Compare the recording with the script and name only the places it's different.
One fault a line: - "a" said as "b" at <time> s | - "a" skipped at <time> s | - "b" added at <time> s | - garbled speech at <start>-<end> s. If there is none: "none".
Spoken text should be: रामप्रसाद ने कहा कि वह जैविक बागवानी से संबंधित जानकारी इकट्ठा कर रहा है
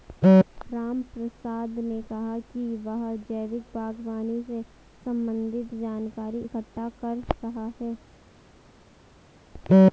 none